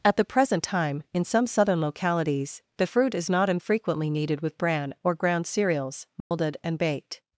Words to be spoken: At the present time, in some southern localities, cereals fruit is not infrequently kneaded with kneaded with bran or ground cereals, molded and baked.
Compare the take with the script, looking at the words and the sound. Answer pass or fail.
fail